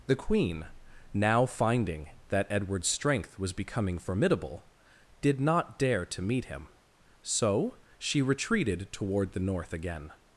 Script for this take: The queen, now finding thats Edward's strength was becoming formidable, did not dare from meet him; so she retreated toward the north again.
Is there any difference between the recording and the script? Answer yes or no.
yes